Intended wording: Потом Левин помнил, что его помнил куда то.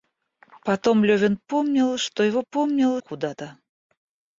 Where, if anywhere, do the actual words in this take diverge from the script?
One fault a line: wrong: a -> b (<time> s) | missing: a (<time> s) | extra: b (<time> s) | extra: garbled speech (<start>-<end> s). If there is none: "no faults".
no faults